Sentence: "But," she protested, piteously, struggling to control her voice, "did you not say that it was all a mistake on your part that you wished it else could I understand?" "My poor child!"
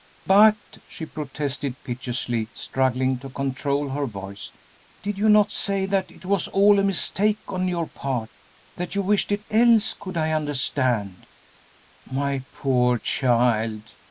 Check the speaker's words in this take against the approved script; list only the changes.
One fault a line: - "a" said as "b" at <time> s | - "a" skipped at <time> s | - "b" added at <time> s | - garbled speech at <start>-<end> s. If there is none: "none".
none